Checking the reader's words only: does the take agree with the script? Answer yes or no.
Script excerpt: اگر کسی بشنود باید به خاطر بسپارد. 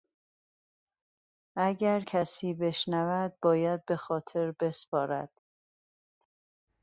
yes